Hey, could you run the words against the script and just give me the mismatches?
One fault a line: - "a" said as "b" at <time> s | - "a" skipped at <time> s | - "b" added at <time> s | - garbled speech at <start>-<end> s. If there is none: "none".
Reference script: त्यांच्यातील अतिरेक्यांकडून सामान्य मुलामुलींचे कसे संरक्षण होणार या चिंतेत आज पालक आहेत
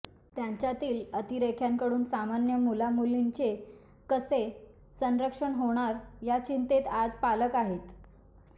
none